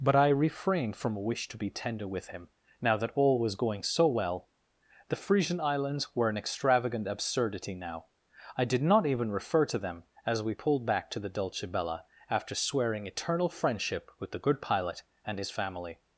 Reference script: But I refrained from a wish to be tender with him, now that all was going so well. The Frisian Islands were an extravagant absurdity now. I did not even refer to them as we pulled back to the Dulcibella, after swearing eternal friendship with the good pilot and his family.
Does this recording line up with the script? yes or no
yes